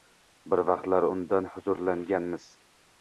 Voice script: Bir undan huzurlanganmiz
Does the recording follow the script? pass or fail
fail